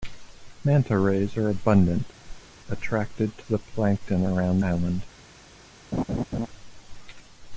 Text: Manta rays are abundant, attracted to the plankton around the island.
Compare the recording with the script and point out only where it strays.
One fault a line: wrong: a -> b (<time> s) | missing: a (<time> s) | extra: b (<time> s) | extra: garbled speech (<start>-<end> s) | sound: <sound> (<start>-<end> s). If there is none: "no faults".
sound: whoosh (2.2-2.6 s)
missing: the (4.6 s)
sound: laugh (5.9-6.5 s)